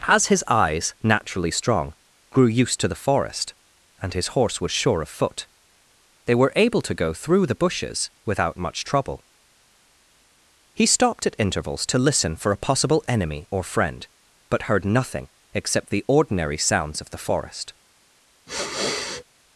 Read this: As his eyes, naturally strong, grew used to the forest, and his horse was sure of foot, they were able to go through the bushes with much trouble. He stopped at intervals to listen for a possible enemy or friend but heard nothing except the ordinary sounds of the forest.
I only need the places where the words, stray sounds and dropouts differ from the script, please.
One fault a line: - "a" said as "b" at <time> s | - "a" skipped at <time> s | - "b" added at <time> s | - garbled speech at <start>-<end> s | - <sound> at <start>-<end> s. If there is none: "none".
- "with" said as "without" at 8.2 s
- sniff at 18.5-19.2 s